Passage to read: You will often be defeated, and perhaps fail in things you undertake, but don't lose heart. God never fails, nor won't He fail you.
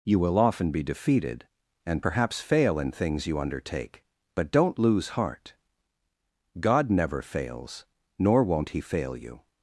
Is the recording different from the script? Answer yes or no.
no